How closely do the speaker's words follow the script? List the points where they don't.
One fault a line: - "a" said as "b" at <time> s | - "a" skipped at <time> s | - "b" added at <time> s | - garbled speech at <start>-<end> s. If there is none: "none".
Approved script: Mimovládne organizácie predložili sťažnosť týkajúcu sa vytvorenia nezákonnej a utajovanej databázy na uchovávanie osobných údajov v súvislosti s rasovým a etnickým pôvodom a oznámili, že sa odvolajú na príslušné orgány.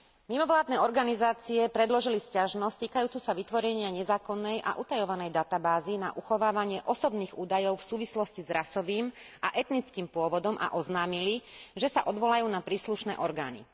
none